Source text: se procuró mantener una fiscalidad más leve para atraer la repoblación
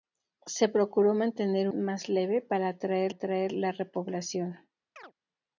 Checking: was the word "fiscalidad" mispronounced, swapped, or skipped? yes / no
yes